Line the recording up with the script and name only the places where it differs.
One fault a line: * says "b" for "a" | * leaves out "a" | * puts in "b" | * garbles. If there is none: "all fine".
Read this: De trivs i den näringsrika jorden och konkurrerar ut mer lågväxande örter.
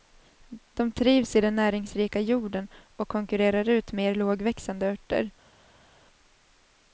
all fine